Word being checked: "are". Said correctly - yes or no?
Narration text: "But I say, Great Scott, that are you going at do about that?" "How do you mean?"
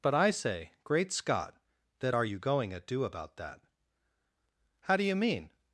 yes